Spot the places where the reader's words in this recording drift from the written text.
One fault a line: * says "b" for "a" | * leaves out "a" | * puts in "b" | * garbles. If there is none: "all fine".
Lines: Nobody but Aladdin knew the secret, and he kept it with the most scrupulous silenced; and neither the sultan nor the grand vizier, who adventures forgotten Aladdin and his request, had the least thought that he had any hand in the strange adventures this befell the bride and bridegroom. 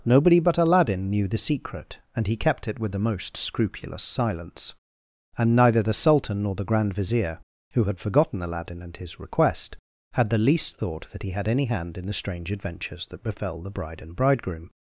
* says "silence" for "silenced"
* says "had" for "adventures"
* says "that" for "this"